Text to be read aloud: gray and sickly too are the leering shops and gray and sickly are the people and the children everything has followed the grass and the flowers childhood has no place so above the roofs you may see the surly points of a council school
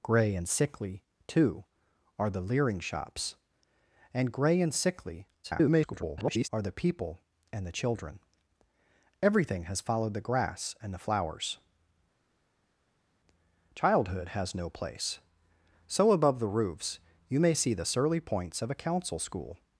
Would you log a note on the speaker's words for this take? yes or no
yes